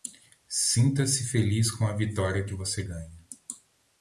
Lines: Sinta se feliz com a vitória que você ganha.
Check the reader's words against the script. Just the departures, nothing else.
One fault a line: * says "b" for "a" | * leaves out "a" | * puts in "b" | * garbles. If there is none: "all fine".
all fine